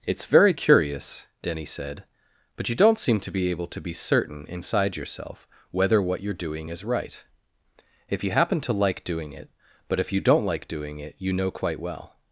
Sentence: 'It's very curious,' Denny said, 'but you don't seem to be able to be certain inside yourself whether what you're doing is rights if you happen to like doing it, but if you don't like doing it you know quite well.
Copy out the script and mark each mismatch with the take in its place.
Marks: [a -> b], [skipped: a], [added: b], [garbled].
'It's very curious,' Denny said, 'but you don't seem to be able to be certain inside yourself whether what you're doing is [rights -> right] if you happen to like doing it, but if you don't like doing it you know quite well.